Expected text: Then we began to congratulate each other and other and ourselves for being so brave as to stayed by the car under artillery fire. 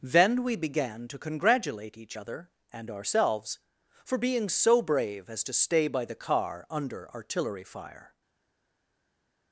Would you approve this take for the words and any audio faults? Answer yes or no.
no